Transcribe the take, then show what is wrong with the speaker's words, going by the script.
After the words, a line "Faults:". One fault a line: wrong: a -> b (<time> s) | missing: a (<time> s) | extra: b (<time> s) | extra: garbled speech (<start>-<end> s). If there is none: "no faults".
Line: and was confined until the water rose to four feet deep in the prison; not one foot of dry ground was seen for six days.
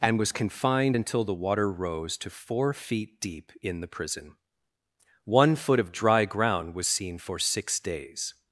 and was confined until the water rose to four feet deep in the prison; one foot of dry ground was seen for six days.
Faults:
missing: not (4.4 s)